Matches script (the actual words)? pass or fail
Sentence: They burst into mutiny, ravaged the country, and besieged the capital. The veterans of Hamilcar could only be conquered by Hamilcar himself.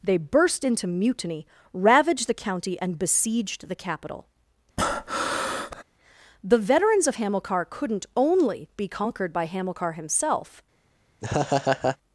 fail